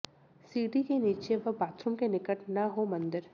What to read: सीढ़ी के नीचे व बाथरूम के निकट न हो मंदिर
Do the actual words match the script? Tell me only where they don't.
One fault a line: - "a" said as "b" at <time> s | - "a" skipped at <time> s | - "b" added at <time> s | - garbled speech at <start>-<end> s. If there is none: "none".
none